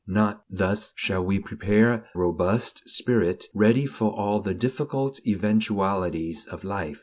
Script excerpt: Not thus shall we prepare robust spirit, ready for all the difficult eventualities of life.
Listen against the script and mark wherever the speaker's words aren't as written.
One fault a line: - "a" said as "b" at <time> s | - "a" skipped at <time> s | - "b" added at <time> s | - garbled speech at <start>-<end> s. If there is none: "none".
none